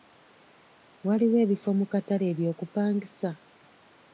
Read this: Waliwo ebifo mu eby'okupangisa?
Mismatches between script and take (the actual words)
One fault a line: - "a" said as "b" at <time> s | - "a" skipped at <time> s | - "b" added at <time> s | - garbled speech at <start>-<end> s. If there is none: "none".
- "katale" added at 1.9 s